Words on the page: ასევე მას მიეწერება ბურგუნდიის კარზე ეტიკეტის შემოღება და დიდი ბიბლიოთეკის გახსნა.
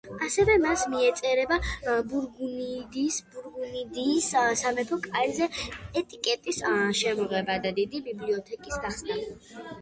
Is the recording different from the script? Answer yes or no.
yes